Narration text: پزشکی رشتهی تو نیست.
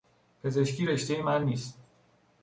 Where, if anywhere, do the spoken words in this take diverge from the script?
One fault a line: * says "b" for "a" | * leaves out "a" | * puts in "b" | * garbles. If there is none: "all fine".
* says "من" for "تو"